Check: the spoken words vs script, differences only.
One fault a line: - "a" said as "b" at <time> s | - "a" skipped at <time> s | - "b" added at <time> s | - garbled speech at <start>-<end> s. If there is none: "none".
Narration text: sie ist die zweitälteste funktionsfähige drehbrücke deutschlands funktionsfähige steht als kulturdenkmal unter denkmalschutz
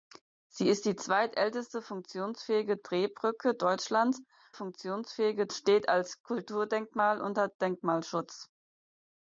none